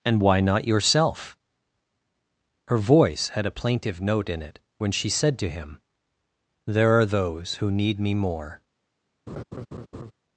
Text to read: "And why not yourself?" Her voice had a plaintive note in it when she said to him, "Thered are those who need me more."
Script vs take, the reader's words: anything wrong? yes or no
yes